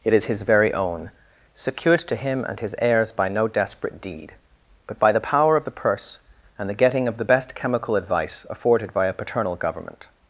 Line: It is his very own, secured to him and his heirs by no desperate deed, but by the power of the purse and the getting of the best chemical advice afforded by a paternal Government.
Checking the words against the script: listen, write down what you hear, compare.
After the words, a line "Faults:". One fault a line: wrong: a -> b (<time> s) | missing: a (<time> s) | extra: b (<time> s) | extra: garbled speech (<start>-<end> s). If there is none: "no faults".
It is his very own, secured to him and his heirs by no desperate deed, but by the power of the purse and the getting of the best chemical advice afforded by a paternal Government.
Faults:
no faults